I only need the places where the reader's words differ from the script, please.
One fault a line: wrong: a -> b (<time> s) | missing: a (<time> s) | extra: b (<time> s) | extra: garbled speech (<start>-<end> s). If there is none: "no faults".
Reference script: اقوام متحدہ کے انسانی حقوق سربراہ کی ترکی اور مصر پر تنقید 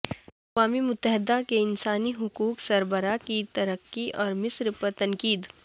no faults